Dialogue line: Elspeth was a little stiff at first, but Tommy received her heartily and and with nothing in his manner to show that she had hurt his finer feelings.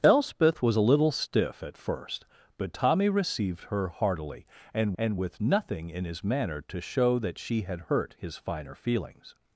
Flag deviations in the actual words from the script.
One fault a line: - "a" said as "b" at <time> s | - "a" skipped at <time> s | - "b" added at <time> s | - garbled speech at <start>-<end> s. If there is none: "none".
none